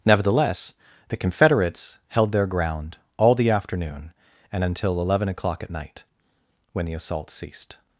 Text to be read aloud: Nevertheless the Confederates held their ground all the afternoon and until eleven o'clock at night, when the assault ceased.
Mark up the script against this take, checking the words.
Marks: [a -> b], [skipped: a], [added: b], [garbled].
Nevertheless the Confederates held their ground all the afternoon and until eleven o'clock at night, when the assault ceased.